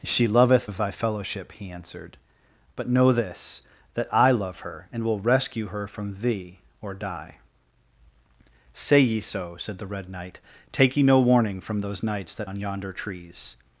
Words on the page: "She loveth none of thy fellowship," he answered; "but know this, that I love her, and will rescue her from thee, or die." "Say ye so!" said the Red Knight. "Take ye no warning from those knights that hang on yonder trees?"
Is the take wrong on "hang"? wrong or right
wrong